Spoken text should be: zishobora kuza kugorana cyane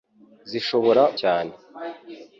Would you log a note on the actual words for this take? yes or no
yes